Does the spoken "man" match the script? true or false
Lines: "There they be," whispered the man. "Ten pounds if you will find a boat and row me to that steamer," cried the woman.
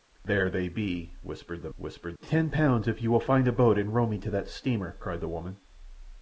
false